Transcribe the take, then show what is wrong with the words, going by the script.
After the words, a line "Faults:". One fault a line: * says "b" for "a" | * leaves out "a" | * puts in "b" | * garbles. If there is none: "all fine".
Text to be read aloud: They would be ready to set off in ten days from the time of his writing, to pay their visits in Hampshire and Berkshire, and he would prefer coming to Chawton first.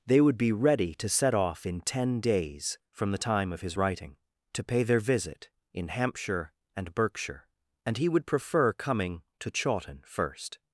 They would be ready to set off in ten days from the time of his writing, to pay their visit in Hampshire and Berkshire, and he would prefer coming to Chawton first.
Faults:
* says "visit" for "visits"